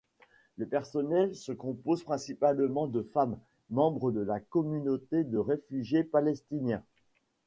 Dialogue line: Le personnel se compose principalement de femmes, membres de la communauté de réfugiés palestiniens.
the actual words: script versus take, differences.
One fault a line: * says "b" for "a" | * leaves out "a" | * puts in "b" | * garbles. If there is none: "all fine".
all fine